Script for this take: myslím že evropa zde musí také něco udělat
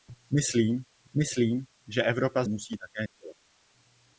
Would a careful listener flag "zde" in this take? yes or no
yes